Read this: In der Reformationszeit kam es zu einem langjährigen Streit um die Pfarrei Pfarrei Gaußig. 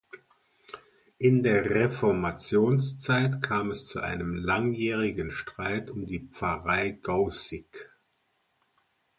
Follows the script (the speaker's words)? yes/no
no